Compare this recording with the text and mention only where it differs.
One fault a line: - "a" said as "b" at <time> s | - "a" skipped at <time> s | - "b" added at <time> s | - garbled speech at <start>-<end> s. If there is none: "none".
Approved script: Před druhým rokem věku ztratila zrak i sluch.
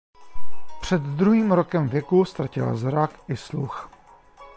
none